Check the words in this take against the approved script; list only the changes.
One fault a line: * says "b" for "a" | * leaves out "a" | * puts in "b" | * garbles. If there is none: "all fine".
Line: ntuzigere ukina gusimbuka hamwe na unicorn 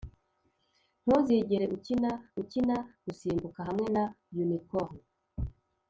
* puts in "ukina"